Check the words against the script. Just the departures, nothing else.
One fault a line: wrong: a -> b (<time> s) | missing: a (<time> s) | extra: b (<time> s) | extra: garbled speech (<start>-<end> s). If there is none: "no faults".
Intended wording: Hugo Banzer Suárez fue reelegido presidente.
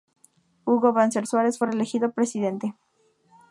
no faults